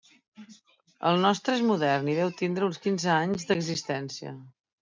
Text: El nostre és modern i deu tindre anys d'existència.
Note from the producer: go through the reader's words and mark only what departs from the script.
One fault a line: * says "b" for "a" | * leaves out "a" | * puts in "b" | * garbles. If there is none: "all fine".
* puts in "uns quinze"